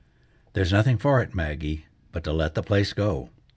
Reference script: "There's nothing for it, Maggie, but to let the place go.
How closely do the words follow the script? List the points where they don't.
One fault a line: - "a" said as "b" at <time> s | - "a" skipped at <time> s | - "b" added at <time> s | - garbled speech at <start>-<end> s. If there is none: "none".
none